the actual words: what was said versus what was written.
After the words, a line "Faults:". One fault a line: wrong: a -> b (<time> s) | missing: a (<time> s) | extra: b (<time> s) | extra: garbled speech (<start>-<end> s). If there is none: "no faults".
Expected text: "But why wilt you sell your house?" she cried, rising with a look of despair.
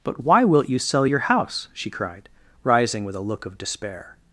"But why wilt you sell your house?" she cried, rising with a look of despair.
Faults:
no faults